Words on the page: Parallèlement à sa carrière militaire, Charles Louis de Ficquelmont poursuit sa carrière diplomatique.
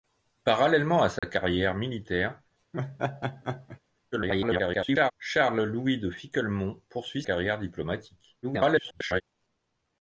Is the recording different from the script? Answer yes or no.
yes